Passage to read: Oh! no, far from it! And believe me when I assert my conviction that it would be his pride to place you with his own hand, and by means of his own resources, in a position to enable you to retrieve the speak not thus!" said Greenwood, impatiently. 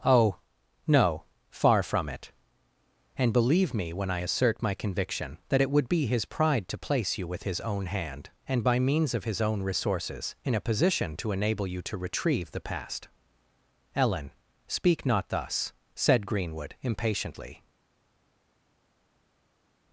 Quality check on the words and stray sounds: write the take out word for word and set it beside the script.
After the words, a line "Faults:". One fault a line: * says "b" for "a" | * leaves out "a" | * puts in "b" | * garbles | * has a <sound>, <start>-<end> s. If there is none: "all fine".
Oh! no, far from it! And believe me when I assert my conviction that it would be his pride to place you with his own hand, and by means of his own resources, in a position to enable you to retrieve the past," "Ellen, speak not thus!" said Greenwood, impatiently.
Faults:
* puts in "past Ellen"